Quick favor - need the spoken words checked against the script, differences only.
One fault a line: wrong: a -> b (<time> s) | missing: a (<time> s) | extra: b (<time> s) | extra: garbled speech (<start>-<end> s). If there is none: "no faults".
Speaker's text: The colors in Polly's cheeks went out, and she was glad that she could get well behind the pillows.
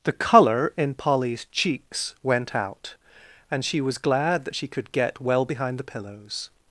wrong: colors -> color (0.1 s)